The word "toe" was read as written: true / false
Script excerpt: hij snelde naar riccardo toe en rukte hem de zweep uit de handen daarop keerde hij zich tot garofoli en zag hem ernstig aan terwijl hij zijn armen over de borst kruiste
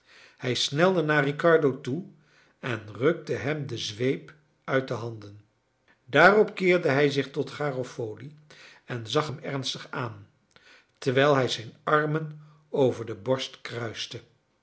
true